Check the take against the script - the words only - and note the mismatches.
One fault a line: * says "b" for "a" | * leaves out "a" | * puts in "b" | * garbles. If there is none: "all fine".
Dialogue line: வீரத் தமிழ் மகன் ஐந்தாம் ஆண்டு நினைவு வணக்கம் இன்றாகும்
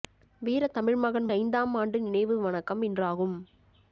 all fine